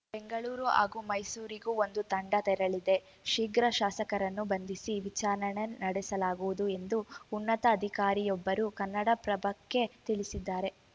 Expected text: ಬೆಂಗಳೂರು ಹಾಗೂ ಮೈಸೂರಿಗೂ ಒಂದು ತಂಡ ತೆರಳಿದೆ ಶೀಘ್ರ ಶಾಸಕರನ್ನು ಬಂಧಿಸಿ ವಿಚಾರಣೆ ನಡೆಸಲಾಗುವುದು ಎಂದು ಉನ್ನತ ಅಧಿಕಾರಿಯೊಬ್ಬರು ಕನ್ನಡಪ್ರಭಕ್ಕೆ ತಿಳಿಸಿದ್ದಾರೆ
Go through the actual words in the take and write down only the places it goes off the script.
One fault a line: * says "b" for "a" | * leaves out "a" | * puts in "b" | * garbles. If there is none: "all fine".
all fine